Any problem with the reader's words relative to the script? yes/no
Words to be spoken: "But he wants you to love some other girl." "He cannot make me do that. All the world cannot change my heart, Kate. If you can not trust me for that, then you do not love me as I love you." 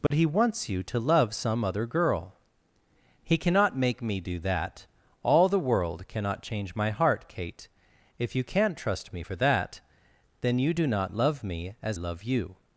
yes